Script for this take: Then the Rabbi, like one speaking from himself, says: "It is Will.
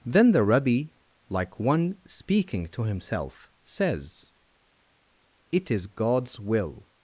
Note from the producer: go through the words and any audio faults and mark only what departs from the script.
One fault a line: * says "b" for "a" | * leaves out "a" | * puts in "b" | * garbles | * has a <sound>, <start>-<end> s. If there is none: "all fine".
* says "to" for "from"
* puts in "God's"